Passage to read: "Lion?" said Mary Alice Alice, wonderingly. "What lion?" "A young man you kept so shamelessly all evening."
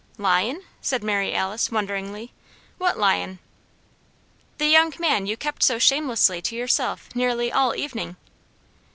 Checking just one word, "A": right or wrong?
wrong